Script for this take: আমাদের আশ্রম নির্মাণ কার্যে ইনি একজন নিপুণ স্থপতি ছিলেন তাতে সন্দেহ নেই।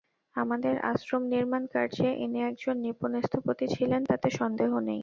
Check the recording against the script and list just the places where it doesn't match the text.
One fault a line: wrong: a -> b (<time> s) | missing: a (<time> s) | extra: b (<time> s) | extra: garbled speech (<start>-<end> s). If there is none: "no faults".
no faults